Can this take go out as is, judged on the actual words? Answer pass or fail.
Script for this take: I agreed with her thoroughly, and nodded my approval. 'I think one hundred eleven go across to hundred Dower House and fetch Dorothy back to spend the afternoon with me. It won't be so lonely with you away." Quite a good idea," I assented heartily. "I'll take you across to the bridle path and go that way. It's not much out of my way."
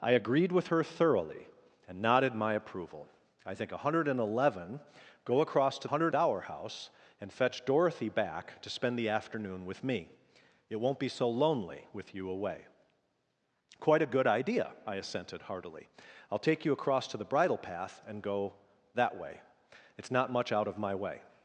pass